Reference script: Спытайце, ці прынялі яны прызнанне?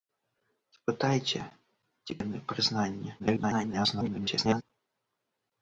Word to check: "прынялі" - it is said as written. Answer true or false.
false